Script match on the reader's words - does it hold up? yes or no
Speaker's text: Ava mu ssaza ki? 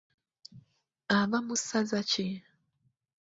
yes